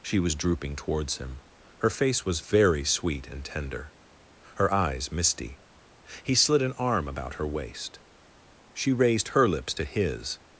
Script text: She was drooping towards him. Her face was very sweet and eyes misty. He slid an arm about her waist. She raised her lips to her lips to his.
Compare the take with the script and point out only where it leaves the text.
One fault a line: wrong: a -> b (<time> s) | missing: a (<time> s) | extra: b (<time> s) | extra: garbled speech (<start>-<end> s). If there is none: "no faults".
extra: tender her (3.5 s)
missing: her lips to (9.8 s)